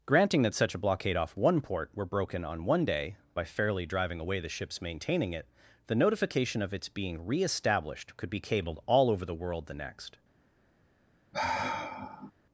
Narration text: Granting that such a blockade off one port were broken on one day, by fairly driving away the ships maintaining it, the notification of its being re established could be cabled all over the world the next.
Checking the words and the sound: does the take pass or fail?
fail